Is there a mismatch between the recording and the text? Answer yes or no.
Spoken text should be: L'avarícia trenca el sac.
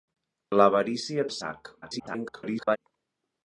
yes